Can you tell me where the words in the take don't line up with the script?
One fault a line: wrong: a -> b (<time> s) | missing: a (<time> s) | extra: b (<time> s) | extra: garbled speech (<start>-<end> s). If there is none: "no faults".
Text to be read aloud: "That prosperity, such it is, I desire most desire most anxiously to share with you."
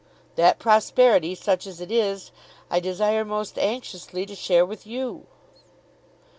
extra: as (1.7 s)
missing: desire most (3.6 s)